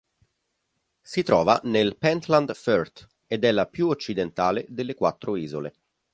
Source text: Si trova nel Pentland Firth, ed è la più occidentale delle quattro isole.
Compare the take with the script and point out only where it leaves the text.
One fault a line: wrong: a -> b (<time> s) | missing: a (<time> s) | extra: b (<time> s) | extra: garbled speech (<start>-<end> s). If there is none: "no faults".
no faults